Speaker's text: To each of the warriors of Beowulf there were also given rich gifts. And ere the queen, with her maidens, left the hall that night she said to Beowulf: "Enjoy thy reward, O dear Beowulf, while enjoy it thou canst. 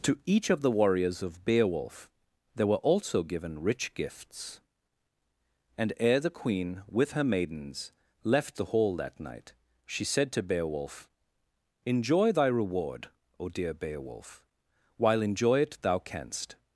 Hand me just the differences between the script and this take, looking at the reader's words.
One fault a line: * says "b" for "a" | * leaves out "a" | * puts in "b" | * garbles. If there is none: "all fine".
all fine